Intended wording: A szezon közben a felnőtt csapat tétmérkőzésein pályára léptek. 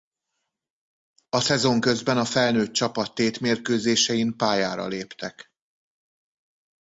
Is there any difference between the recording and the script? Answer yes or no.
no